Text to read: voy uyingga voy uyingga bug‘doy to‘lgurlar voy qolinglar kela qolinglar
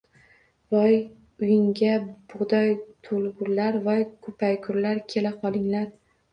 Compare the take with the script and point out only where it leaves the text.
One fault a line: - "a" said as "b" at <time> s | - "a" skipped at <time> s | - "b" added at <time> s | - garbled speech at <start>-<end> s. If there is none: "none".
- "voy uyingga" skipped at 1.9 s
- "qolinglar" said as "ko‘paygurlar" at 4.3 s